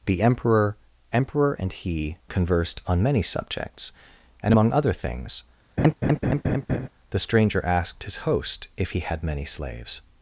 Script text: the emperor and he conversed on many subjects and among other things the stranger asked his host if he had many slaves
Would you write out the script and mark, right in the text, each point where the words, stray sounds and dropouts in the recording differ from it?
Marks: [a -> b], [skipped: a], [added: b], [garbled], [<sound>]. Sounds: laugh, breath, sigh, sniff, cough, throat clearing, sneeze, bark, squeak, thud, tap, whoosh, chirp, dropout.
the emperor [added: emperor] and he conversed on many subjects and among other things [laugh] the stranger asked his host if he had many slaves